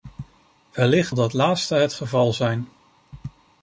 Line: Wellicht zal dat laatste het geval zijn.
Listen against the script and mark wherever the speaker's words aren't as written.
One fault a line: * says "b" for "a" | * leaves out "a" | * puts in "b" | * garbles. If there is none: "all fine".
* leaves out "zal"